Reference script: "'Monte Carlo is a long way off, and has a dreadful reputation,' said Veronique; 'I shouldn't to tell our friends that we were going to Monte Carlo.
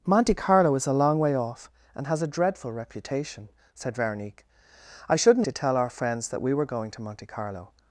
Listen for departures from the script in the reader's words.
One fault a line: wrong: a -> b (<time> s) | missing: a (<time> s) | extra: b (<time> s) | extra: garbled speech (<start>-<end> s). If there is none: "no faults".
no faults